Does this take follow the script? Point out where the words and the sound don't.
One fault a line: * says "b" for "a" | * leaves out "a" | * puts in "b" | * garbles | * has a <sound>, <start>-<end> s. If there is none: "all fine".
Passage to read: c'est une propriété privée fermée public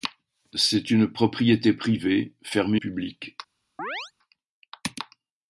* has a chirp, 3.8-4.1 s